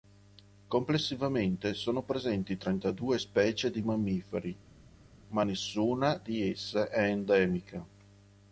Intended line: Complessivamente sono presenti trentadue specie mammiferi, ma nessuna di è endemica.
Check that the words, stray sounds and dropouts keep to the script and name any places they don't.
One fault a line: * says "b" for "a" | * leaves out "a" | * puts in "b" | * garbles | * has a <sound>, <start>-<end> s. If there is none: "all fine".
* puts in "di"
* puts in "esse"